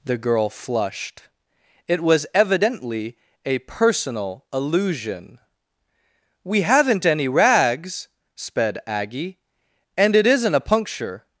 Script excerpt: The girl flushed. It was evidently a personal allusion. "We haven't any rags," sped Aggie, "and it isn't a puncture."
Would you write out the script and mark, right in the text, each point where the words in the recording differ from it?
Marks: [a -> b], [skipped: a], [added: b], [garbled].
The girl flushed. It was evidently a personal allusion. "We haven't any rags," sped Aggie, "and it isn't a puncture."